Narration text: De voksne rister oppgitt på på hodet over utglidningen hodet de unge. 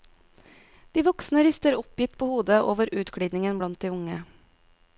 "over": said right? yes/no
yes